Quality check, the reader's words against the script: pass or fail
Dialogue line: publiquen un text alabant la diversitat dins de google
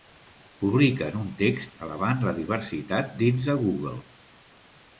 pass